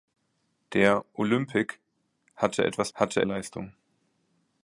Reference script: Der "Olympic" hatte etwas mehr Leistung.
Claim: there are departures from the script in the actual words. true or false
true